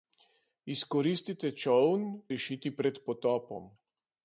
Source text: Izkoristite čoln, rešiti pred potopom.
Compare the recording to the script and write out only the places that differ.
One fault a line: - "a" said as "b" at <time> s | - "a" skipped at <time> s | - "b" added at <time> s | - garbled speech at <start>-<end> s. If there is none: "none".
none